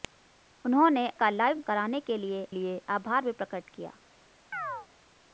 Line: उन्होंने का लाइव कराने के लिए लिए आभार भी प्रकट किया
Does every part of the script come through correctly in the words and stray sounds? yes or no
no